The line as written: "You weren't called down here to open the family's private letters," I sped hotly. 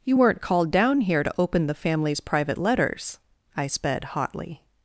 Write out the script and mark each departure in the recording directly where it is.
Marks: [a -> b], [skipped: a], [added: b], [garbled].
"You weren't called down here to open the family's private letters," I sped hotly.